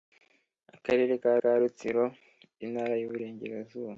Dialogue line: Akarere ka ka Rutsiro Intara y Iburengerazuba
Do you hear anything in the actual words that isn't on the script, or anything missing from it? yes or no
no